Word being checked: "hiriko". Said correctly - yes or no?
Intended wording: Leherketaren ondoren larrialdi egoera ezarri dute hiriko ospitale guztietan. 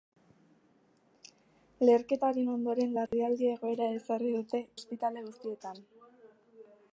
no